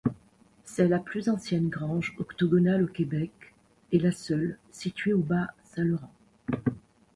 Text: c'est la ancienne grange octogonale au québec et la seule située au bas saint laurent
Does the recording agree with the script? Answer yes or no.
no